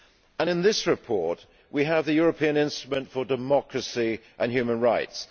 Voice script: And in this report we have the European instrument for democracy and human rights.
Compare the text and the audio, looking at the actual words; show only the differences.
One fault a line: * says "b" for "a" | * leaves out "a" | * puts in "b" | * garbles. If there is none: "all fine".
all fine